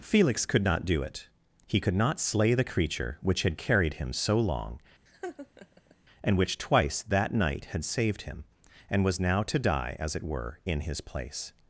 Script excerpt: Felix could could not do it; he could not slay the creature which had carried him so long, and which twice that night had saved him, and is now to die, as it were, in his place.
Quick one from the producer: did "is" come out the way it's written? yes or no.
no